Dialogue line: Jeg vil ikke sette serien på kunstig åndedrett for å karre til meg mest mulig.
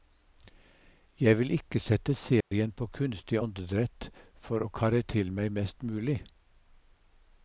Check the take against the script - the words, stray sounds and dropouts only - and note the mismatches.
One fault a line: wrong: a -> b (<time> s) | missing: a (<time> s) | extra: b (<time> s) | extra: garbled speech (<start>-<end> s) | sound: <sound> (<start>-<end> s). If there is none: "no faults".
sound: dropout (2.4-2.5 s)